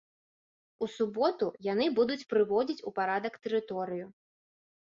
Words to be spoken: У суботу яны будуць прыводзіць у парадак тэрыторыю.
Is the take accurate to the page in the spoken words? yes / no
yes